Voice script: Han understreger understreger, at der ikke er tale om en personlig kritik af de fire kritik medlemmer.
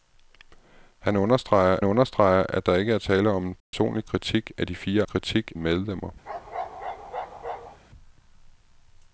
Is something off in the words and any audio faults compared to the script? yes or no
yes